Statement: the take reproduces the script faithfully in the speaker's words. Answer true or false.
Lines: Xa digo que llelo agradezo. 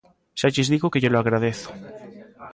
false